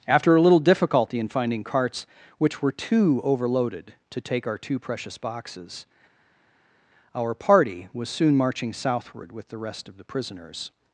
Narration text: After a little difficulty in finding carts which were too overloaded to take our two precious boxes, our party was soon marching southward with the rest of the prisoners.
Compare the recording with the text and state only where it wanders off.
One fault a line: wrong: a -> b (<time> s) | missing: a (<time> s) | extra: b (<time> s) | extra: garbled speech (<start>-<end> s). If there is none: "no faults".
no faults